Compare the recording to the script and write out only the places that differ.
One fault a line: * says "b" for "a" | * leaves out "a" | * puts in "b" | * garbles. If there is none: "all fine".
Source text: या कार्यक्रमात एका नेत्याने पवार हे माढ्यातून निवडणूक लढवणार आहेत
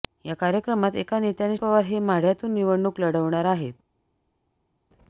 all fine